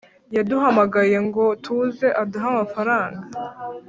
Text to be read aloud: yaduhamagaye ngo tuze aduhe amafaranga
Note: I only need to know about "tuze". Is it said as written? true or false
true